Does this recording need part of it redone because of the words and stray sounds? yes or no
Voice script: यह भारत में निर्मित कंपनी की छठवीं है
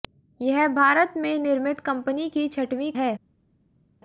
no